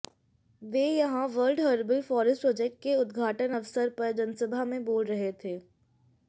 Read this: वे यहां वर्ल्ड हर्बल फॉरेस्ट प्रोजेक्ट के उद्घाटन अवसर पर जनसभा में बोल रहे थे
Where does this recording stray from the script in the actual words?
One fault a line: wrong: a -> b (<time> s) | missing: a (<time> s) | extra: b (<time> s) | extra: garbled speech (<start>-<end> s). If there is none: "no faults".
no faults